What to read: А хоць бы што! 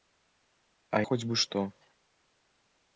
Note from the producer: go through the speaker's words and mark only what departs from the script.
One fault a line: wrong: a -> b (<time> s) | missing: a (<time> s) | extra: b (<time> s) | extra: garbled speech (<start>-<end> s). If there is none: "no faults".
no faults